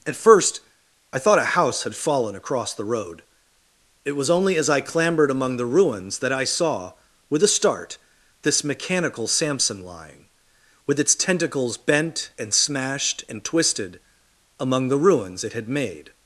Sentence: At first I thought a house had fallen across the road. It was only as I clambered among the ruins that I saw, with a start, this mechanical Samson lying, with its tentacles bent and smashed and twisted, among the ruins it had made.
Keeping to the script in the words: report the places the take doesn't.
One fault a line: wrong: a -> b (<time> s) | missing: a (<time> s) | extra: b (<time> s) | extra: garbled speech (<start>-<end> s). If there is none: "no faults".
no faults